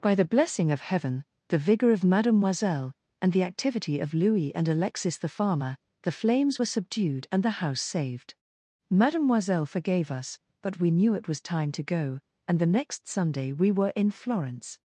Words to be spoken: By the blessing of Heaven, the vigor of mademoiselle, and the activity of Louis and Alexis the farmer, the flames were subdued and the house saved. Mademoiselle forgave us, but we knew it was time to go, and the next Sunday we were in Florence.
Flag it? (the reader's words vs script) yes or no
no